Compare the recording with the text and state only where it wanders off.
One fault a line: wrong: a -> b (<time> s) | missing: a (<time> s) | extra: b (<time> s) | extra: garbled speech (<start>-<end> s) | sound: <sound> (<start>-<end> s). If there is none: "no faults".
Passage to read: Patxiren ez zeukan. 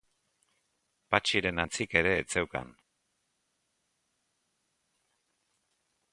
extra: antzik ere (1.6 s)